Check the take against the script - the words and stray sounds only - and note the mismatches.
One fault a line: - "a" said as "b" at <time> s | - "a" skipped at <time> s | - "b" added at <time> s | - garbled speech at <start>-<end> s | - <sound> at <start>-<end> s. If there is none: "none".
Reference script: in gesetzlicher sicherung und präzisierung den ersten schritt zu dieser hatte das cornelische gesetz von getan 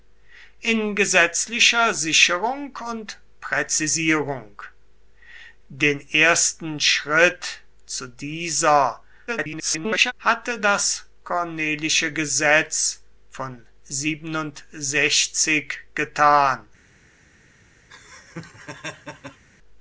- garbled speech at 9.3-10.1 s
- laugh at 17.9-19.4 s